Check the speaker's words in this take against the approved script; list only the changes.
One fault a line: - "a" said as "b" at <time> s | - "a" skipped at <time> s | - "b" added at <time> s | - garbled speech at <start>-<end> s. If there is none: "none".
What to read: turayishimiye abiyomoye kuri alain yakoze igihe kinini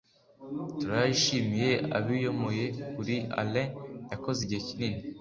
none